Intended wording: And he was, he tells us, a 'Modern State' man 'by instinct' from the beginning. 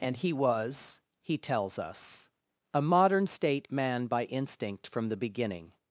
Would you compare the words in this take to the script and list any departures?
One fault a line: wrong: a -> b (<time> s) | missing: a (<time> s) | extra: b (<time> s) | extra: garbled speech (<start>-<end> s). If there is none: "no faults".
no faults